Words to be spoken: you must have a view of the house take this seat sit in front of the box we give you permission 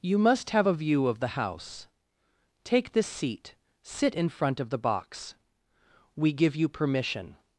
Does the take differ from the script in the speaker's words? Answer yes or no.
no